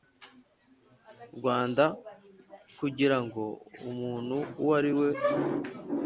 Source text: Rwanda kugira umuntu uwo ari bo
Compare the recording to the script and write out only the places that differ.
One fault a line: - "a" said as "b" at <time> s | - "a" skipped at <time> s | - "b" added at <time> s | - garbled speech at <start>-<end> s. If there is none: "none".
- "ngo" added at 3.2 s
- "bo" said as "we" at 5.0 s